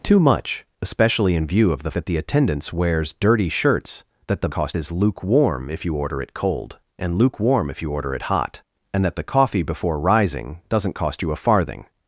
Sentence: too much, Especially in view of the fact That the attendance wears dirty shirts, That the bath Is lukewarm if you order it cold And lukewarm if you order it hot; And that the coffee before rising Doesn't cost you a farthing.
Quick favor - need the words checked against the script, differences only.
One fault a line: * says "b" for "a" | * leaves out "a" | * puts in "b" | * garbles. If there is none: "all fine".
* leaves out "fact"
* says "cost" for "bath"